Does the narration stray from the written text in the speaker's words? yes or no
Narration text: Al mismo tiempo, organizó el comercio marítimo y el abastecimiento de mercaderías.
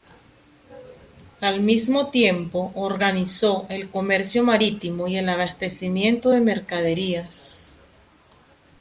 no